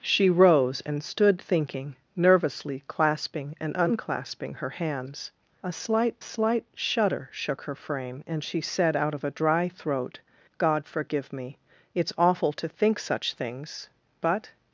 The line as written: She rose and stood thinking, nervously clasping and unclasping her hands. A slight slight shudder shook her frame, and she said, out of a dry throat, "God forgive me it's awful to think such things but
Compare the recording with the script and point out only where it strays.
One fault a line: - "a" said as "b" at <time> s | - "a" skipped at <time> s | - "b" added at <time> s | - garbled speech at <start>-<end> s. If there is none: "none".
none